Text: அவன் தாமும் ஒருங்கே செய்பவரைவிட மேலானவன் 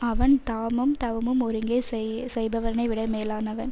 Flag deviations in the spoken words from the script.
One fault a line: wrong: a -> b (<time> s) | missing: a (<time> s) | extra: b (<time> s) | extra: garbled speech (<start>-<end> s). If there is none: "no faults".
extra: தவமும் (1.0 s)